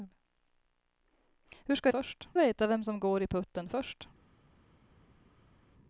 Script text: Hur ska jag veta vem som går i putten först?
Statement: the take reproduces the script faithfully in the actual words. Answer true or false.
false